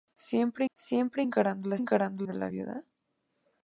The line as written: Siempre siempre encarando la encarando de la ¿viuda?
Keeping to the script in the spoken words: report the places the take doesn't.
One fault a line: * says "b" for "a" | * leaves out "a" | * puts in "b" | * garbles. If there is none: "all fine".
all fine